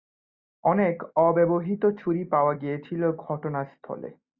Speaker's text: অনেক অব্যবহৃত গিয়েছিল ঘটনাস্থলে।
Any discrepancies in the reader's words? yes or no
yes